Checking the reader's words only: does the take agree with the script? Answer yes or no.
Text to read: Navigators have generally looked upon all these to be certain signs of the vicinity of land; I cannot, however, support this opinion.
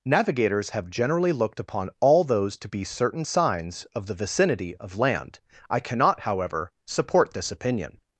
no